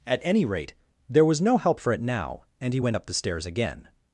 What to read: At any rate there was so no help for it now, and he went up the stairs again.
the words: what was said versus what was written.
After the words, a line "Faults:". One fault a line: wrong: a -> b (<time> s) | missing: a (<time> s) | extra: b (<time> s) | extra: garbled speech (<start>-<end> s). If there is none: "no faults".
At any rate there was no help for it now, and he went up the stairs again.
Faults:
missing: so (1.4 s)